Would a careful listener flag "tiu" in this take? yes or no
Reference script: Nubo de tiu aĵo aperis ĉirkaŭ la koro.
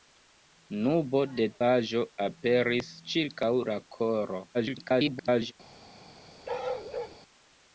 yes